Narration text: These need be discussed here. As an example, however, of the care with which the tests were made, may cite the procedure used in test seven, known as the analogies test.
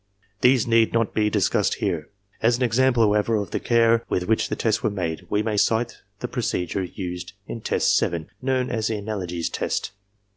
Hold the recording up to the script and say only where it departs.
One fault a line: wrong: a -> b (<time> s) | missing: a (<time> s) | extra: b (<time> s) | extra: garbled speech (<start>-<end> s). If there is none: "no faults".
extra: not (0.9 s)
extra: we (5.3 s)